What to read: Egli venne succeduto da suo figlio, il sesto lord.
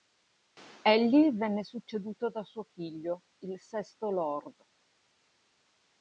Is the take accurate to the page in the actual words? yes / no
yes